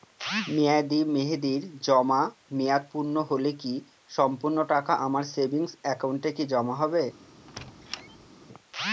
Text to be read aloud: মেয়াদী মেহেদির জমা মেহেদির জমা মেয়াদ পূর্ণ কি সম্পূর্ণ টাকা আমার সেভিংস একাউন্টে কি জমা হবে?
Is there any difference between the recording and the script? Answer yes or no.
yes